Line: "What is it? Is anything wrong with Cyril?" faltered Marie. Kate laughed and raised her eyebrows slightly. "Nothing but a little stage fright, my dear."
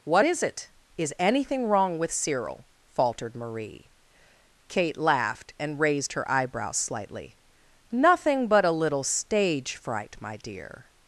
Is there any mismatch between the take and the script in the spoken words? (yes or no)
no